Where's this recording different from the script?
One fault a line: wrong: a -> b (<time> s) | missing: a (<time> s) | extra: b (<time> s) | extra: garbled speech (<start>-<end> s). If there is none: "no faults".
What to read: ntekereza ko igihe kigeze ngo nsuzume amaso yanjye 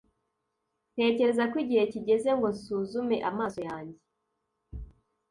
no faults